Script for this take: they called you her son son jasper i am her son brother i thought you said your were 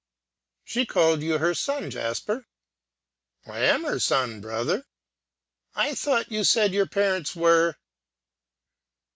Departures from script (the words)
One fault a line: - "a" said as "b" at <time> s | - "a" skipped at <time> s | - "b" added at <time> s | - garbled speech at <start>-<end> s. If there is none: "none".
- "they" said as "she" at 0.6 s
- "son" skipped at 1.9 s
- "parents" added at 6.9 s